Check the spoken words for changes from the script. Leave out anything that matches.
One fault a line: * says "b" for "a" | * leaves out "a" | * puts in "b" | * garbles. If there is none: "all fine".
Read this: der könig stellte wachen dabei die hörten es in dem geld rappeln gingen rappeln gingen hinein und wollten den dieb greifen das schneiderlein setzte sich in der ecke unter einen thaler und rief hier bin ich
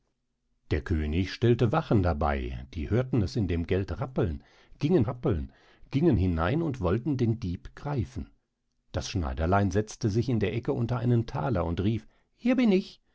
all fine